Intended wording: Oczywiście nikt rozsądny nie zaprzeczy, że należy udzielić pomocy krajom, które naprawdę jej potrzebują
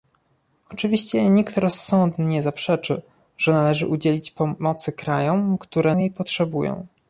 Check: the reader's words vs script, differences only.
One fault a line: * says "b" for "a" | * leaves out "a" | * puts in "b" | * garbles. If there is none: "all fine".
* leaves out "naprawdę"